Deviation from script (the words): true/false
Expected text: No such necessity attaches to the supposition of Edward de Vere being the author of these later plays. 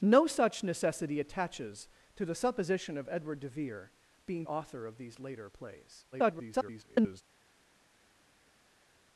true